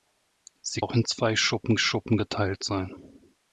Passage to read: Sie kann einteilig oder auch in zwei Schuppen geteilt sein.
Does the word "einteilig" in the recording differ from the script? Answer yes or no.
yes